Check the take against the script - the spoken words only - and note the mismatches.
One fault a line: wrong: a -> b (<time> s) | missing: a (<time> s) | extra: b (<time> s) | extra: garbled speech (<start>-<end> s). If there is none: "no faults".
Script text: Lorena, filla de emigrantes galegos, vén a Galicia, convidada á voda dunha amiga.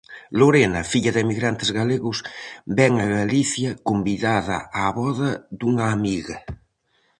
no faults